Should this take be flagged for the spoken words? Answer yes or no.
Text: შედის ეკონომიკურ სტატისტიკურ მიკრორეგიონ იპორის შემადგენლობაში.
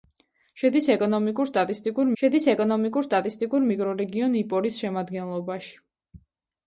yes